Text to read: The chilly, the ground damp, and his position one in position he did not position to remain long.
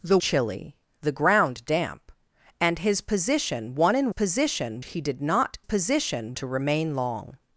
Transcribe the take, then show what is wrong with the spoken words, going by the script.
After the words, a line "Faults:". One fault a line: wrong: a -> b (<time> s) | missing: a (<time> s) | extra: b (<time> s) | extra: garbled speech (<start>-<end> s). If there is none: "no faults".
The chilly, the ground damp, and his position one in position he did not position to remain long.
Faults:
no faults